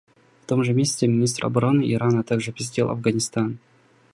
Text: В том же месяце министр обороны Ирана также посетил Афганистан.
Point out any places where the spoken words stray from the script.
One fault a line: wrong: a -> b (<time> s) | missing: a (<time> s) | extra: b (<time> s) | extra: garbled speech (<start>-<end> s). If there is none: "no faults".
no faults